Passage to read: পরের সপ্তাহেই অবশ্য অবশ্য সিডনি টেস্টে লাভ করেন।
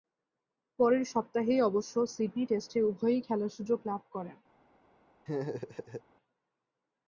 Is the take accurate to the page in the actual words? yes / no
no